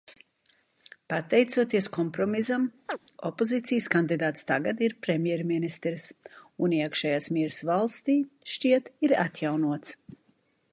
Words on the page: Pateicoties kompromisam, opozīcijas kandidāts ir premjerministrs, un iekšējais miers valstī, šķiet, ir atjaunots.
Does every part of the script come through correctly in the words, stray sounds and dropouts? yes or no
no